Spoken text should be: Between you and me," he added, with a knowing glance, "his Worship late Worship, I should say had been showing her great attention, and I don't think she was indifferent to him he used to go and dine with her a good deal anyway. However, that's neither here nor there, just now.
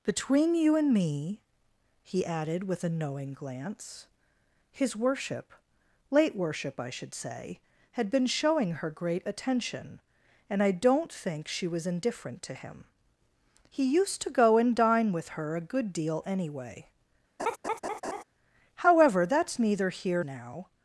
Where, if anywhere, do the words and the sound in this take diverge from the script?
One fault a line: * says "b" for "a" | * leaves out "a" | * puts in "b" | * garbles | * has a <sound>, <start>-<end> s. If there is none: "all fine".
* has a laugh, 17.4-18.2 s
* leaves out "nor there just"